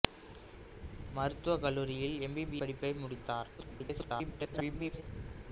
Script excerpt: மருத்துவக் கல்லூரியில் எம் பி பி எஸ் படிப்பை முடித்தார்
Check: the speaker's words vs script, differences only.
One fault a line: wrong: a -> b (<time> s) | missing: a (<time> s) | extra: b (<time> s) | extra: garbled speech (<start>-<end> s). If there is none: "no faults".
missing: எஸ் (2.6 s)
extra: garbled speech (3.6-5.0 s)